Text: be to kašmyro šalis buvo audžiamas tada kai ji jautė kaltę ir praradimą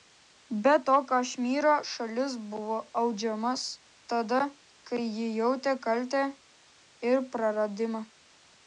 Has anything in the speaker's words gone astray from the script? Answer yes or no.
no